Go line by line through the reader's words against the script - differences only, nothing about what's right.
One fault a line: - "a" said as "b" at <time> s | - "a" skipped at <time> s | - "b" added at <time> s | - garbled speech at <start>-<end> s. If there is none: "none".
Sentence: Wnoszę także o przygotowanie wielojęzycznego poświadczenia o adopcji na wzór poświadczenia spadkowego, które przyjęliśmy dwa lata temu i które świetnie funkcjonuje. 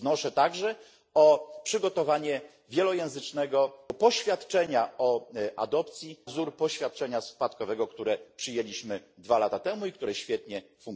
- "na" skipped at 6.2 s